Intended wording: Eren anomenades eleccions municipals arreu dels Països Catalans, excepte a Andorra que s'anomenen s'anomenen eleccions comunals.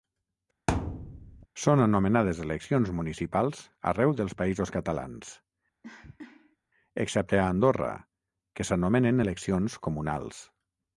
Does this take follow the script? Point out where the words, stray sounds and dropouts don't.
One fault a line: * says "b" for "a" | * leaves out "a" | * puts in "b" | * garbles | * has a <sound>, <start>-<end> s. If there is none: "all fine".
* has a thud, 0.7-1.5 s
* says "Són" for "Eren"
* has a cough, 5.8-6.6 s
* leaves out "s'anomenen"